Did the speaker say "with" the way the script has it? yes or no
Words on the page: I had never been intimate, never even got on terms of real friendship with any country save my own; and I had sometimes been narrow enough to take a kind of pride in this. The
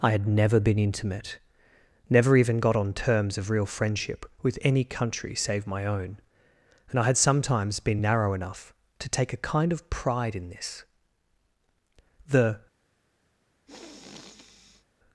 yes